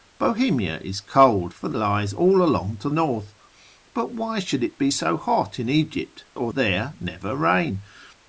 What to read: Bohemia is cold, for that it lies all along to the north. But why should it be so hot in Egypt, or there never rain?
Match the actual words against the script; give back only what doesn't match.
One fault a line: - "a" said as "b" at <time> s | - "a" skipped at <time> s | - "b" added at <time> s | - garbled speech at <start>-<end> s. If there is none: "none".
- "that it" skipped at 1.7 s
- "the" skipped at 2.9 s